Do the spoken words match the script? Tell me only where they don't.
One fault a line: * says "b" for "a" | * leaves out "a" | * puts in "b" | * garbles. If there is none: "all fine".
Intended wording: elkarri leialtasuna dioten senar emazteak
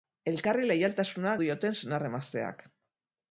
all fine